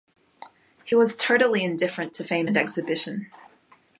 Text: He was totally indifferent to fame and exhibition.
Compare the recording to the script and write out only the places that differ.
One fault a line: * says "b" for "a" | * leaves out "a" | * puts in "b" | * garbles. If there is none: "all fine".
all fine